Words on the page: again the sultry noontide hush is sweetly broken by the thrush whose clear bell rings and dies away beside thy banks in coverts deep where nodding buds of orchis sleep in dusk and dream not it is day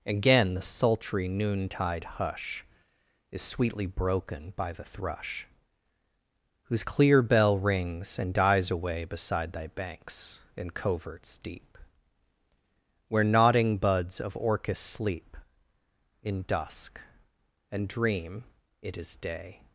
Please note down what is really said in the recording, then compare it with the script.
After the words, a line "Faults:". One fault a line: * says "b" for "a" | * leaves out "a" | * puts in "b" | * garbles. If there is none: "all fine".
again the sultry noontide hush is sweetly broken by the thrush whose clear bell rings and dies away beside thy banks in coverts deep where nodding buds of orchis sleep in dusk and dream it is day
Faults:
* leaves out "not"